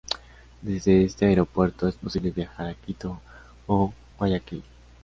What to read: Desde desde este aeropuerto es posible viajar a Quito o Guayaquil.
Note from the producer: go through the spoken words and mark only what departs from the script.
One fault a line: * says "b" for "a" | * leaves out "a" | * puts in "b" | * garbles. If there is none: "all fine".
* leaves out "desde"